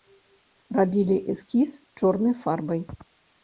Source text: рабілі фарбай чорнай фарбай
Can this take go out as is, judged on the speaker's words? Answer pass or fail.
fail